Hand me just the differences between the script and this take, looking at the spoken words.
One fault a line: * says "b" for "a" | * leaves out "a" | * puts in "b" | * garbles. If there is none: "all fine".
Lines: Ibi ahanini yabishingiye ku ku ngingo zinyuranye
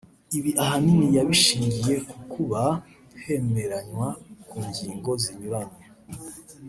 * puts in "kuba hemeranywa"